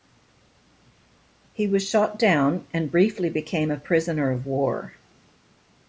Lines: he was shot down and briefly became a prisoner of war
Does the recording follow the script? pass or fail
pass